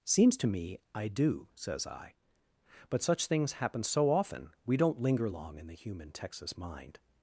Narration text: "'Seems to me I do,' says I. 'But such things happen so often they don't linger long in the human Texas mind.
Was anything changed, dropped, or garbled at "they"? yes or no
yes